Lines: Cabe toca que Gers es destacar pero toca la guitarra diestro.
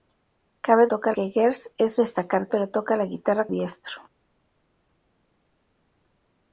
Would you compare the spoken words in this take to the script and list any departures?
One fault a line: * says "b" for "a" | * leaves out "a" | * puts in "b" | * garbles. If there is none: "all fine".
all fine